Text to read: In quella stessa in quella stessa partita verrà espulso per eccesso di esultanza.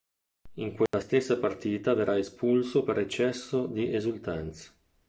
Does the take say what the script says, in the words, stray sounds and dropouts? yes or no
no